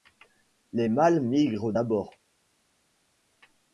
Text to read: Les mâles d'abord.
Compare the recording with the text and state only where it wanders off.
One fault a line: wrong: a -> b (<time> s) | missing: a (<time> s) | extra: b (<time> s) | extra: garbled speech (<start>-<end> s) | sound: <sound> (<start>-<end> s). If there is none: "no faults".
extra: migrent (1.2 s)